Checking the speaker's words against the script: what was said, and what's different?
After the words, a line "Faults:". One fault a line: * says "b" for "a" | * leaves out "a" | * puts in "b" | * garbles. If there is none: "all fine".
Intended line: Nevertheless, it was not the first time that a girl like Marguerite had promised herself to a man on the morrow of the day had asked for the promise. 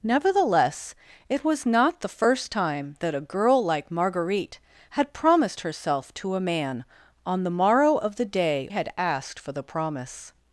Nevertheless, it was not the first time that a girl like Marguerite had promised herself to a man on the morrow of the day had asked for the promise.
Faults:
all fine